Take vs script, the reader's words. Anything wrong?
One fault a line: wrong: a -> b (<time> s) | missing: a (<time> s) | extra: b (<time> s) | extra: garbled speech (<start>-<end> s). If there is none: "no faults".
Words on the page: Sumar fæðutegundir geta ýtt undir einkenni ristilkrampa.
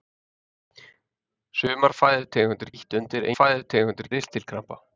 missing: geta (2.7 s)
wrong: einkenni -> fæðutegundir (3.4 s)